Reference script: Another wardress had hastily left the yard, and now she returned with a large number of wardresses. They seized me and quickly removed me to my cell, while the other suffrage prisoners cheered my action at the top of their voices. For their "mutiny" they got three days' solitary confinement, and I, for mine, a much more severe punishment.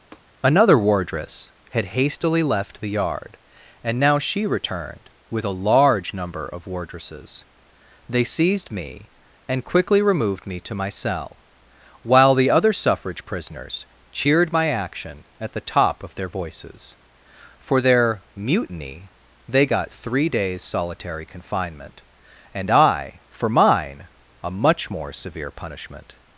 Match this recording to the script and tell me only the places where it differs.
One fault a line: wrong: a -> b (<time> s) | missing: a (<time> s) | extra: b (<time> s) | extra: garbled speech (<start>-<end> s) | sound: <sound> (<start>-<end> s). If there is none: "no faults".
sound: tap (0.1-0.2 s)